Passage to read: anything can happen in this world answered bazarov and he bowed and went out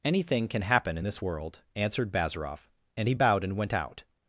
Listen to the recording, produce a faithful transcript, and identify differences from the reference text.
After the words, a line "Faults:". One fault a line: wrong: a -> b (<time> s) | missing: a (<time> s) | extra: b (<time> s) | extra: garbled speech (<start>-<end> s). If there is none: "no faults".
anything can happen in this world answered bazarov and he bowed and went out
Faults:
no faults